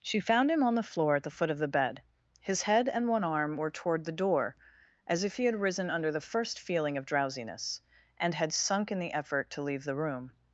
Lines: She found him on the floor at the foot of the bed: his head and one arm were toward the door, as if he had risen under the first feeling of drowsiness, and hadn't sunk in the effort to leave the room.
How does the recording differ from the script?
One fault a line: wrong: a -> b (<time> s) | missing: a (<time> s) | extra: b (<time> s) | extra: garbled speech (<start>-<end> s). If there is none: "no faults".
wrong: hadn't -> had (8.3 s)